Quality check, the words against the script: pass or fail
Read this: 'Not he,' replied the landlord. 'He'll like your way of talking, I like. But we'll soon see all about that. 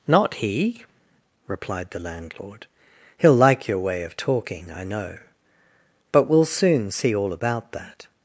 fail